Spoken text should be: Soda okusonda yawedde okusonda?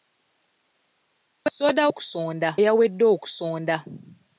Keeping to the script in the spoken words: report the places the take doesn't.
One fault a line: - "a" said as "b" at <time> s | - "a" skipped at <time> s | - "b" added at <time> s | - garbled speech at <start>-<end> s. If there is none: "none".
none